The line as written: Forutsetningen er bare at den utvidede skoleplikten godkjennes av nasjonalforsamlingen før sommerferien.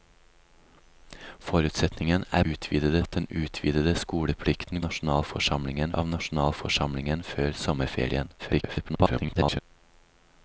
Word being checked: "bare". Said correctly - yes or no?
no